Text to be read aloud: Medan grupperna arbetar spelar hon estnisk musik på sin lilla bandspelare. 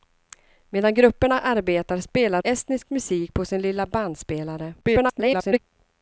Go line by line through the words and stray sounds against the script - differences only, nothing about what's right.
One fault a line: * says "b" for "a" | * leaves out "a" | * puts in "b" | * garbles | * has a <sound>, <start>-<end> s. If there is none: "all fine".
* leaves out "hon"
* garbles